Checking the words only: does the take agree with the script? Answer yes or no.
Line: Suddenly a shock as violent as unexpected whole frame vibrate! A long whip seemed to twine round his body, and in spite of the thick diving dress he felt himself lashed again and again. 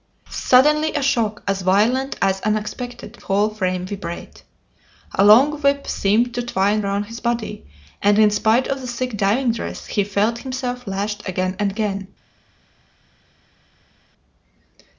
yes